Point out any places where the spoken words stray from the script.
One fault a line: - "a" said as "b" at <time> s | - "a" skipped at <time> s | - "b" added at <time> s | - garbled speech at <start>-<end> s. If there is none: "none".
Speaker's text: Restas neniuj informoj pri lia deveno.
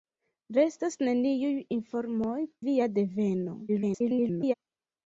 - "pri" skipped at 2.4 s
- garbled speech at 3.7-4.5 s